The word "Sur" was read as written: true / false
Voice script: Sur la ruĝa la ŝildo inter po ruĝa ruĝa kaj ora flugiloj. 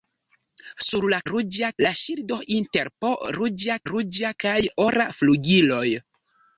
true